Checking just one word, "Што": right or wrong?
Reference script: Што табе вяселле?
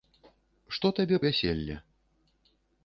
right